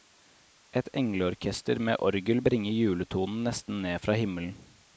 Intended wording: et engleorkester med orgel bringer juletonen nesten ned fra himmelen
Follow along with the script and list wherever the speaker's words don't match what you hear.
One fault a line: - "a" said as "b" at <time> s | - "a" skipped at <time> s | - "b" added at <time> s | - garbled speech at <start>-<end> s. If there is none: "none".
none